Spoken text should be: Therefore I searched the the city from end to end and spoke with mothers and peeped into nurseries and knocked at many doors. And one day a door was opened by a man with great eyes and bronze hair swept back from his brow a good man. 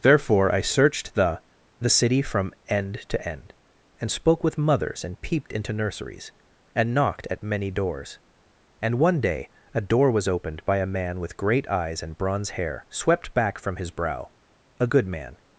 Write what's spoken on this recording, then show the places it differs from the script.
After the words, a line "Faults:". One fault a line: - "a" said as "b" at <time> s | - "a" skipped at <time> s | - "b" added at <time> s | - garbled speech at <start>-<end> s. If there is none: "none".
Therefore I searched the the city from end to end and spoke with mothers and peeped into nurseries and knocked at many doors. And one day a door was opened by a man with great eyes and bronze hair swept back from his brow a good man.
Faults:
none